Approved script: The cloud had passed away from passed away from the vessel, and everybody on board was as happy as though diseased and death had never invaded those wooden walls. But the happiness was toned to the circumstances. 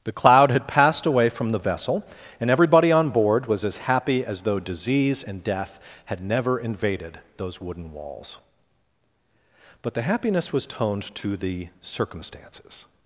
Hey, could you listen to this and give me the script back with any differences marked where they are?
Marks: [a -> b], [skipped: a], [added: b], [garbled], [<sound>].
The cloud had passed away from [skipped: passed away from] the vessel, and everybody on board was as happy as though [diseased -> disease] and death had never invaded those wooden walls. But the happiness was toned to the circumstances.